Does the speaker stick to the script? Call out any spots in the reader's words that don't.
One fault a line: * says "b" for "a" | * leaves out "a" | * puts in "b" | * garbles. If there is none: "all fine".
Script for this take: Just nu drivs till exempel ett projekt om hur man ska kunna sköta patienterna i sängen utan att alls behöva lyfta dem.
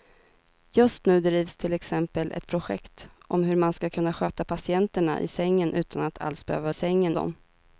* says "sängen" for "lyfta"